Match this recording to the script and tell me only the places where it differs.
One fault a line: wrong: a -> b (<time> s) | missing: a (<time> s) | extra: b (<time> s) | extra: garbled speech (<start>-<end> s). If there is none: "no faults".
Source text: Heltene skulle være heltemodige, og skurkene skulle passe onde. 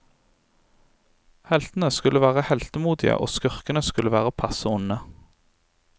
extra: være (4.1 s)